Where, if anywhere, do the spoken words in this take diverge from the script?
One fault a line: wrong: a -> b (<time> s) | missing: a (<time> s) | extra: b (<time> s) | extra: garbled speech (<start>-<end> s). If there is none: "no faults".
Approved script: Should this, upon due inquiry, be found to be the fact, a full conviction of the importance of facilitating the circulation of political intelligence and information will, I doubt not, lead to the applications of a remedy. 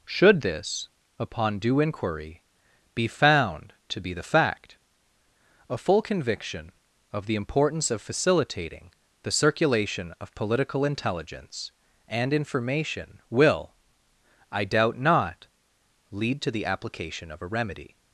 wrong: applications -> application (16.7 s)